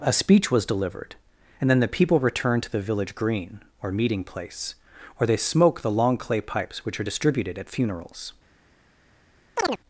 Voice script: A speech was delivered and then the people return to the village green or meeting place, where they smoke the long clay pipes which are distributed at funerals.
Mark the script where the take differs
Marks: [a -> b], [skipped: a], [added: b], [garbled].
A speech was delivered and then the people return to the village green or meeting place, where they smoke the long clay pipes which are distributed at funerals.